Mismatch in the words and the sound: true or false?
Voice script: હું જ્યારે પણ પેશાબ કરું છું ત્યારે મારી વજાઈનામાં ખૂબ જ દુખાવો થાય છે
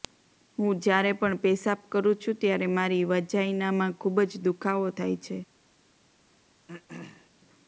true